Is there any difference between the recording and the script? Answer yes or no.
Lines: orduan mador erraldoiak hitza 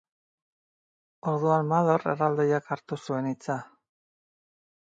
yes